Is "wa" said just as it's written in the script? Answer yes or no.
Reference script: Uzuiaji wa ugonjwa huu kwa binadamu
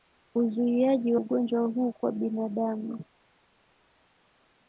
no